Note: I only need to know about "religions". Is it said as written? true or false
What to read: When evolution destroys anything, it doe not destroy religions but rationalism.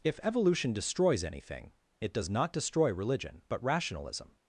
false